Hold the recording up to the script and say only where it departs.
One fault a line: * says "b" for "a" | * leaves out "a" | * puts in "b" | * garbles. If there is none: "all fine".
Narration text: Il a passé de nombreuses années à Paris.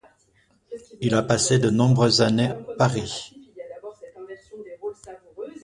* leaves out "à"